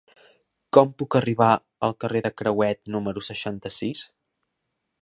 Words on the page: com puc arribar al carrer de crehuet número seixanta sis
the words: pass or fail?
pass